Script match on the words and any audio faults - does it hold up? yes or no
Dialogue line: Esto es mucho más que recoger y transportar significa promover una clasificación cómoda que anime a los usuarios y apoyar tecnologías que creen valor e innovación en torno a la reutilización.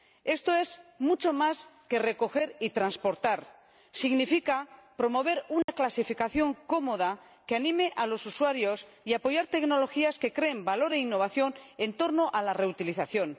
no